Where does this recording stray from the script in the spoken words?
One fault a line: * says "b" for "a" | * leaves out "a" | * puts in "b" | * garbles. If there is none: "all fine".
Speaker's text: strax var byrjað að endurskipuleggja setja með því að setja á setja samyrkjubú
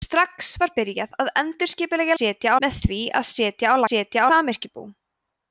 all fine